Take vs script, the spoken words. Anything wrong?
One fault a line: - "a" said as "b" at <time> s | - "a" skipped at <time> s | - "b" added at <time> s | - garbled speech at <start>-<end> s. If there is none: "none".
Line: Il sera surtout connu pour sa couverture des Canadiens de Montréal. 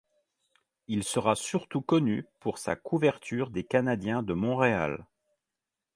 none